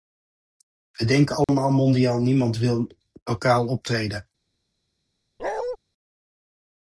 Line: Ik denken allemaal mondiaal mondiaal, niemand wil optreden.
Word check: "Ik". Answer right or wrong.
wrong